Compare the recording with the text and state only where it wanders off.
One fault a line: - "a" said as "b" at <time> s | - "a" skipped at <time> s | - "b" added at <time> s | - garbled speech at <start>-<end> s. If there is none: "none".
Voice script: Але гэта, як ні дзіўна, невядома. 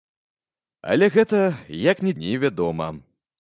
- "дзіўна" skipped at 2.1 s